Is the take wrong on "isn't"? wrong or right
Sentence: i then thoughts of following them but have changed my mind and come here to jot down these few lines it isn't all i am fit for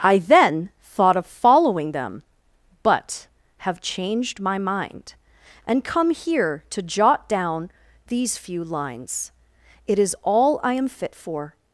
wrong